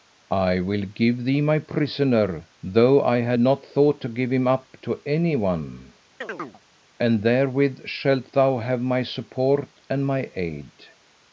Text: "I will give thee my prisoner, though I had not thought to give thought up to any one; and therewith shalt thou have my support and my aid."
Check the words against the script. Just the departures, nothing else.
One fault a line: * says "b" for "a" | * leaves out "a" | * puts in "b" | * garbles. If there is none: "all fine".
* says "him" for "thought"